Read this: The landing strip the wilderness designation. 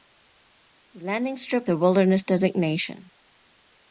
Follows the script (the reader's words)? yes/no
yes